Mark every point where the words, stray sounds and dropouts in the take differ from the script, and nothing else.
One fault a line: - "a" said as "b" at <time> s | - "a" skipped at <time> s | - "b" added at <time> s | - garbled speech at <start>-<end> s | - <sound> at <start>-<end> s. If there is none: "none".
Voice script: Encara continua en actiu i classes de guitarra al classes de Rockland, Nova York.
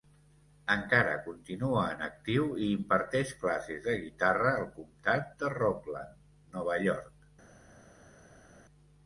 - "imparteix" added at 2.8 s
- "classes" said as "comtat" at 4.8 s